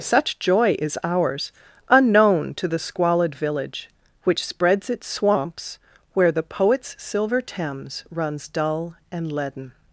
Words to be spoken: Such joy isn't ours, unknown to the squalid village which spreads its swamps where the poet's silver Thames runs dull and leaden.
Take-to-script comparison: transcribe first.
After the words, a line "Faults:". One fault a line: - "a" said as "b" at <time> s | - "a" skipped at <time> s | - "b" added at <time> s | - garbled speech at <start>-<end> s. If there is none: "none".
Such joy is ours, unknown to the squalid village which spreads its swamps where the poet's silver Thames runs dull and leaden.
Faults:
- "isn't" said as "is" at 0.8 s